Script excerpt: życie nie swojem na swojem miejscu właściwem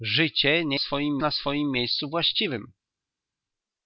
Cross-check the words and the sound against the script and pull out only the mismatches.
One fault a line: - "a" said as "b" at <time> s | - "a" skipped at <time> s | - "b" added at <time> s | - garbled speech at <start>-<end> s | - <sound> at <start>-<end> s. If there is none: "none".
none